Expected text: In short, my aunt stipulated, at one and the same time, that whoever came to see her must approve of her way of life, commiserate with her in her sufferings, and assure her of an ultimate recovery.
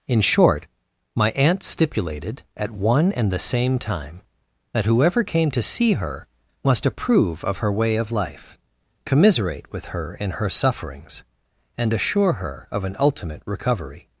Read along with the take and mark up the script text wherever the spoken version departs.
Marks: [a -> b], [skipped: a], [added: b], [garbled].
In short, my aunt stipulated, at one and the same time, that whoever came to see her must approve of her way of life, commiserate with her in her sufferings, and assure her of an ultimate recovery.